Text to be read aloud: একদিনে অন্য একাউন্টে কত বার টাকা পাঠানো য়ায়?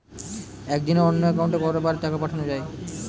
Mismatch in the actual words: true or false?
false